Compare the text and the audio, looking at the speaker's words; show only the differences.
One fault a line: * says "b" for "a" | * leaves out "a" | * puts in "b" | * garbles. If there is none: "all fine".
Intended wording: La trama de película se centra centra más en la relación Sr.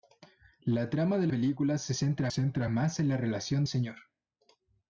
all fine